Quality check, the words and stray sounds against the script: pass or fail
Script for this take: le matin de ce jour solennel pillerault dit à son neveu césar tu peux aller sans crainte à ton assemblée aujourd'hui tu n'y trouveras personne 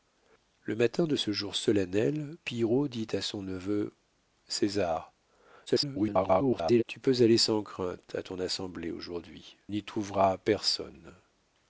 fail